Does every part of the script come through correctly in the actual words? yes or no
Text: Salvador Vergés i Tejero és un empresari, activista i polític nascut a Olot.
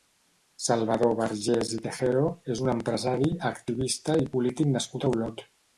yes